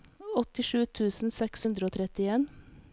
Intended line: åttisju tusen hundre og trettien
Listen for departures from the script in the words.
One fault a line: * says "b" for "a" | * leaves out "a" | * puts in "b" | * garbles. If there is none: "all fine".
* puts in "seks"